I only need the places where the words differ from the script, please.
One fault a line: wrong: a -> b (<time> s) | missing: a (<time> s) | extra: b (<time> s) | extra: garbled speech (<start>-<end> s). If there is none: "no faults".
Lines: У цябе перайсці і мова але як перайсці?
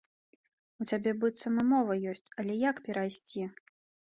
wrong: перайсці -> быццам (1.2 s)
extra: ёсць (2.1 s)